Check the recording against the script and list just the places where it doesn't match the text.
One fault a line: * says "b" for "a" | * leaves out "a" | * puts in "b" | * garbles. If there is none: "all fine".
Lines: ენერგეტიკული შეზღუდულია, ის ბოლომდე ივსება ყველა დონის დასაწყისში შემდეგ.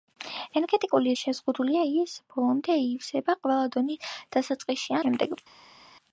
all fine